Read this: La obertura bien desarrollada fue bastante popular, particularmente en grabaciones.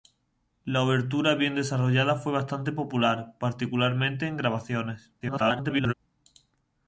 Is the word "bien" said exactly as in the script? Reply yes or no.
yes